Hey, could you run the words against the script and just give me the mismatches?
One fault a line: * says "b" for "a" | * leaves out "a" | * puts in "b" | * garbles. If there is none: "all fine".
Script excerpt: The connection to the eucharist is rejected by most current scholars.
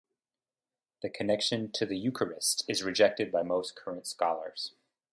all fine